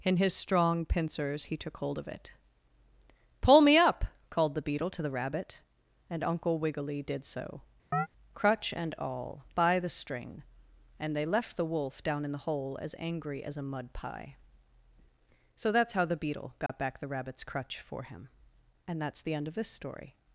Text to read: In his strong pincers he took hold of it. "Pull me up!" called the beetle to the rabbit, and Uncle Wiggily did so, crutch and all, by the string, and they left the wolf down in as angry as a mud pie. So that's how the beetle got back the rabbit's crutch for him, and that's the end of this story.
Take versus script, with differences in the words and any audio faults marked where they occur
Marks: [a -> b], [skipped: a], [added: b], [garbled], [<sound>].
In his strong pincers he took hold of it. "Pull me up!" called the beetle to the rabbit, and Uncle Wiggily did so, [chirp] crutch and all, by the string, and they left the wolf down in [added: the hole] as angry as a mud pie. So that's how the beetle got [dropout] back the rabbit's crutch for him, and that's the end of this story.